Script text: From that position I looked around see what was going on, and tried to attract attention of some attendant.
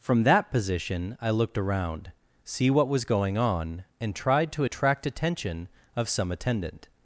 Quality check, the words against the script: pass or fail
pass